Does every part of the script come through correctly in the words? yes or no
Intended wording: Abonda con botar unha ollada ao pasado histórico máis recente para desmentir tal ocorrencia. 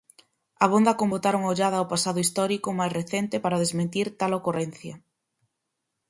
yes